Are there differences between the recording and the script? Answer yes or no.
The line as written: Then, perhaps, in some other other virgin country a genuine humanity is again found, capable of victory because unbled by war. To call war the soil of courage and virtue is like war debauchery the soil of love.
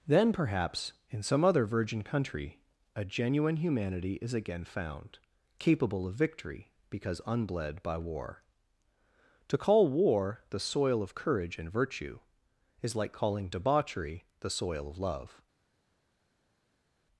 yes